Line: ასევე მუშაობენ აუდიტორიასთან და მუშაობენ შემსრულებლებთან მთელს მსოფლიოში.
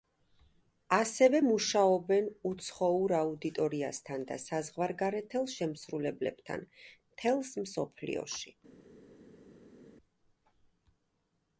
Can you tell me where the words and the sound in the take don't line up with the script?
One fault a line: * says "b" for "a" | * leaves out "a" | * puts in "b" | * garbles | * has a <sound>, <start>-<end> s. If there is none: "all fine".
* puts in "უცხოურ"
* says "საზღვარგარეთელ" for "მუშაობენ"